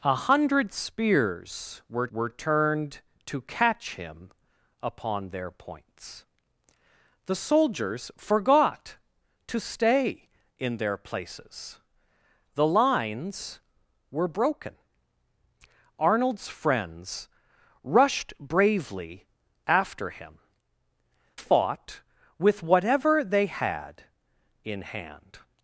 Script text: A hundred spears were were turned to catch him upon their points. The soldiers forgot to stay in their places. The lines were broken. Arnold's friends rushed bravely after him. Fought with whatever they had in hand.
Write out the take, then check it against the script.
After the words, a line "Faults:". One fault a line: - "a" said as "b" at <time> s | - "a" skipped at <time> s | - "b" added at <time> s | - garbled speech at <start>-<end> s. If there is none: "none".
A hundred spears were were turned to catch him upon their points. The soldiers forgot to stay in their places. The lines were broken. Arnold's friends rushed bravely after him. Fought with whatever they had in hand.
Faults:
none